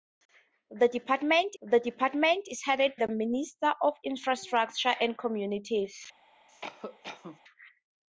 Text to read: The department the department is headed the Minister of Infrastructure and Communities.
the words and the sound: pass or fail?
fail